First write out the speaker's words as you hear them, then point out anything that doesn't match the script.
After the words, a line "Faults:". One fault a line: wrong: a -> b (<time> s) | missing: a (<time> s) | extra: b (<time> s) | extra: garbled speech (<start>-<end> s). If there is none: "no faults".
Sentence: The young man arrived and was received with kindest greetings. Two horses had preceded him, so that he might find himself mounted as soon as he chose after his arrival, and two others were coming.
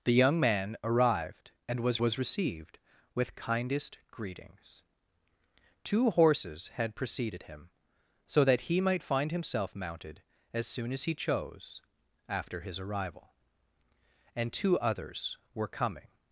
The young man arrived and was was received with kindest greetings. Two horses had preceded him, so that he might find himself mounted as soon as he chose after his arrival, and two others were coming.
Faults:
extra: was (2.0 s)